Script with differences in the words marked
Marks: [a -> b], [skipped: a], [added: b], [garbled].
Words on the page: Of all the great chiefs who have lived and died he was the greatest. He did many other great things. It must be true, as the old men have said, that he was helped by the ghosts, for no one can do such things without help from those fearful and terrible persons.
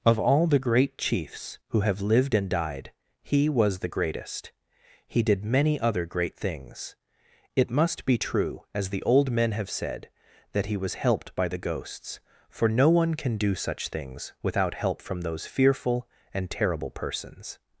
Of all the great chiefs who have lived and died he was the greatest. He did many other great things. It must be true, as the old men have said, that he was helped by the ghosts, for no one can do such things without help from those fearful and terrible persons.